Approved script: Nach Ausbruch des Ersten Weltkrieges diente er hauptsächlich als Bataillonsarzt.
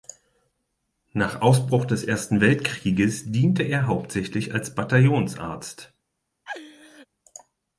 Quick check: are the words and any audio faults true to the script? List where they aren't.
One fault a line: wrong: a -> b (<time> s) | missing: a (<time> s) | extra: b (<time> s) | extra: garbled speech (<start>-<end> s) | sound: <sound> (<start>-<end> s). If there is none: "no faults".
sound: laugh (6.5-7.1 s)